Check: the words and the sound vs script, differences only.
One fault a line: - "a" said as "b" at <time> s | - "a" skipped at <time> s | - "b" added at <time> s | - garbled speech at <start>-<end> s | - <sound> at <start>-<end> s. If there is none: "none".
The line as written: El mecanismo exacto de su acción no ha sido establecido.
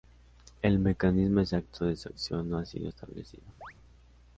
- chirp at 3.6-3.7 s